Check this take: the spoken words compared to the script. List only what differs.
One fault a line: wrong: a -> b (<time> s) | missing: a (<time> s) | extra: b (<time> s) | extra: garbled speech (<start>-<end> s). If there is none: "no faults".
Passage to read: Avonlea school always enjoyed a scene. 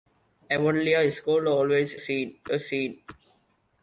wrong: enjoyed -> scene (1.9 s)